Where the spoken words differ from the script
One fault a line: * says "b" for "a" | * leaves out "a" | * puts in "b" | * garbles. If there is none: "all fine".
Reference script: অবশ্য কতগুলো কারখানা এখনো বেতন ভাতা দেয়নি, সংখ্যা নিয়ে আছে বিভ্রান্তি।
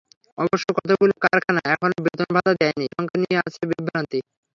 all fine